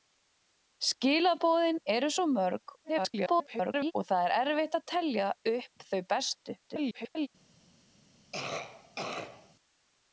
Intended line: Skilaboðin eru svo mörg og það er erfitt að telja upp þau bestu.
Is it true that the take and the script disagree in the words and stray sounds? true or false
true